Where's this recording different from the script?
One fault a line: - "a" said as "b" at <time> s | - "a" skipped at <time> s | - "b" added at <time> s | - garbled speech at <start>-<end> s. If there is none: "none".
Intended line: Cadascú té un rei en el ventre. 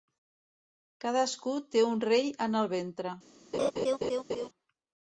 none